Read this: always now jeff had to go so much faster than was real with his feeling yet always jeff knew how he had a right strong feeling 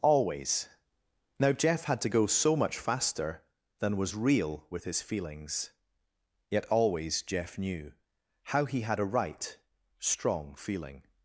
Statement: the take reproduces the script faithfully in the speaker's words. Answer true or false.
false